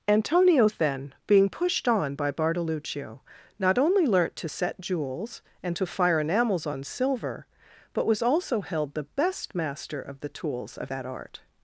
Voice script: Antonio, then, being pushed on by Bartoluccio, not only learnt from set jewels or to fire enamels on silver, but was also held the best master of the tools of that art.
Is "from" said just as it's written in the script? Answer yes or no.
no